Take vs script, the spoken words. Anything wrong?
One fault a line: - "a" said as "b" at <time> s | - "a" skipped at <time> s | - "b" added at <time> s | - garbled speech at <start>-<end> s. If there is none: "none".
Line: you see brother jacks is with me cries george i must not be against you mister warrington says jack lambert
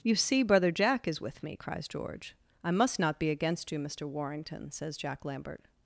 - "jacks" said as "jack" at 0.7 s